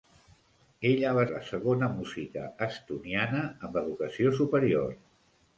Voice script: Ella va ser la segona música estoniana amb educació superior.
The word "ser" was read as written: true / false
false